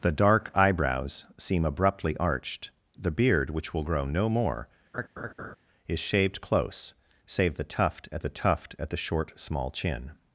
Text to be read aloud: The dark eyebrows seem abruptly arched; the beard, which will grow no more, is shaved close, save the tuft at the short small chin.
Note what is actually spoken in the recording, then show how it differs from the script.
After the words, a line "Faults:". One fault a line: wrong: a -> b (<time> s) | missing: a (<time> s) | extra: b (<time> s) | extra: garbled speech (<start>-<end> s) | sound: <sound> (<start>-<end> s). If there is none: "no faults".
The dark eyebrows seem abruptly arched; the beard, which will grow no more, is shaved close, save the tuft at the tuft at the short small chin.
Faults:
sound: laugh (4.9-5.6 s)
extra: tuft at the (8.3 s)